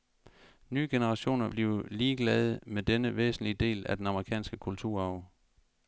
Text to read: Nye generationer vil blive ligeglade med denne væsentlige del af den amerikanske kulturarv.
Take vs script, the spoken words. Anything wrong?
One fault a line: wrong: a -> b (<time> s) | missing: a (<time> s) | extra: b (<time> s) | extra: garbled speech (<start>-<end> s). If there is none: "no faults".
missing: vil (1.5 s)